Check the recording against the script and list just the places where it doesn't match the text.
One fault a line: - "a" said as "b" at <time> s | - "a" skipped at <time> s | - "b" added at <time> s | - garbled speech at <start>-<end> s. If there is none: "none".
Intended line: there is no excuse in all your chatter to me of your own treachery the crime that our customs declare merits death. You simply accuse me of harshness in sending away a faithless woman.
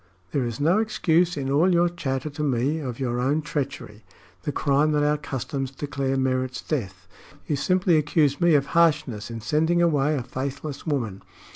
none